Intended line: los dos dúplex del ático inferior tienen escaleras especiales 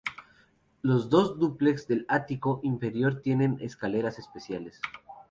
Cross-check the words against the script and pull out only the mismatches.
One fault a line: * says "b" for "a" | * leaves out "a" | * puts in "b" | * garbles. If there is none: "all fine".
all fine